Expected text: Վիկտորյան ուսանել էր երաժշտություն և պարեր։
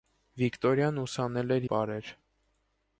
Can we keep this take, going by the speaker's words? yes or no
no